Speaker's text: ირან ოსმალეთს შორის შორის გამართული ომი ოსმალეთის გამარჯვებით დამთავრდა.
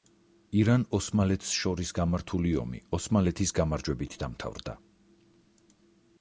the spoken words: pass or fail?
fail